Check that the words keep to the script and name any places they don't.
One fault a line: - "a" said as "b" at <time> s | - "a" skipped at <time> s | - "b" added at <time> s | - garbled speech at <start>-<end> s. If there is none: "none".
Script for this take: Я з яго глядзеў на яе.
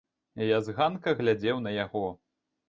- "яго" said as "ганка" at 0.8 s
- "яе" said as "яго" at 1.8 s